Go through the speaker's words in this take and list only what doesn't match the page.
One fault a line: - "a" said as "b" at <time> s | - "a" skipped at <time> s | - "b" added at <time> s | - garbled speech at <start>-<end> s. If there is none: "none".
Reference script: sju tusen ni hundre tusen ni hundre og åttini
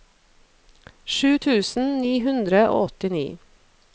- "tusen ni hundre" skipped at 2.6 s